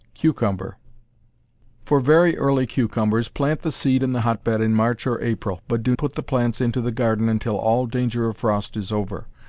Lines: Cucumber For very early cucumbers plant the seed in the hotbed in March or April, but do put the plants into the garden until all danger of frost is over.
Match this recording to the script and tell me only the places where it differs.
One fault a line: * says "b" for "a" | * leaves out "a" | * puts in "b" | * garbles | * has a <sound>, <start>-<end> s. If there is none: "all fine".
all fine